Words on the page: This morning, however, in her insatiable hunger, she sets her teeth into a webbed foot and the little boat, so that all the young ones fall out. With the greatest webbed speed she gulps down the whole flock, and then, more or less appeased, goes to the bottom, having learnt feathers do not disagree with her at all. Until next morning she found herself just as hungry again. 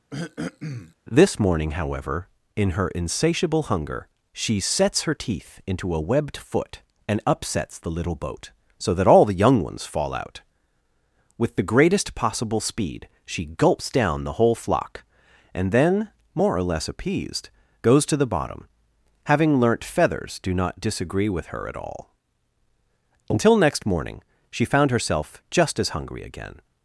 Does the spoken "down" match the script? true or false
true